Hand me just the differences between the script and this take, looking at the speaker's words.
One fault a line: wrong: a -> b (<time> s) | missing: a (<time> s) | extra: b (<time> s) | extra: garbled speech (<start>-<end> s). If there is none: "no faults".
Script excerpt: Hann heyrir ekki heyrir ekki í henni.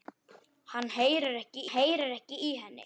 no faults